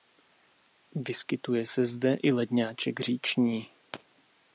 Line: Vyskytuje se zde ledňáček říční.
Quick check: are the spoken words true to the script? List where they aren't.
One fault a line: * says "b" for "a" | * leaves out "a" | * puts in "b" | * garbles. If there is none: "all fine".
* puts in "i"